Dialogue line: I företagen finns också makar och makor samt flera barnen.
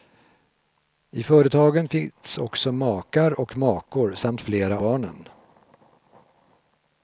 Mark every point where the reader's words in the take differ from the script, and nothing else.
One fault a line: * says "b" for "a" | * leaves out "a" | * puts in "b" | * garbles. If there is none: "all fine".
all fine